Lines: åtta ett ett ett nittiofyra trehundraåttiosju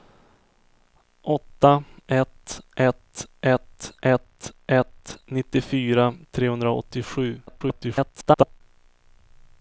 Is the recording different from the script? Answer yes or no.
yes